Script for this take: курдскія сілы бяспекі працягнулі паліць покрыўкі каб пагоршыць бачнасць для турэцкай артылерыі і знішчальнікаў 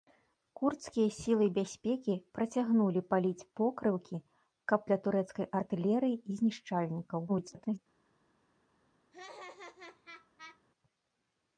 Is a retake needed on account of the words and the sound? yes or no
yes